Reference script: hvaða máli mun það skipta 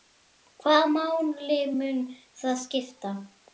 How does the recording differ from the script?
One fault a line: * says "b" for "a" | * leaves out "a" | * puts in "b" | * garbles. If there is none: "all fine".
all fine